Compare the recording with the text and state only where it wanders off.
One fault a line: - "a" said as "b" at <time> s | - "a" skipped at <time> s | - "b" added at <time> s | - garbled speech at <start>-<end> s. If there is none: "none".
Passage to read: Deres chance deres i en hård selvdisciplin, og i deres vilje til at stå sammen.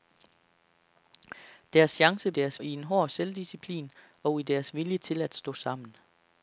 none